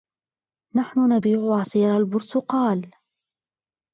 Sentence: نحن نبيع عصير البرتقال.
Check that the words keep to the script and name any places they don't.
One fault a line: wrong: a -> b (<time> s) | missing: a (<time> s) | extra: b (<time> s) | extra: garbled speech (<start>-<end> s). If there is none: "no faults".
no faults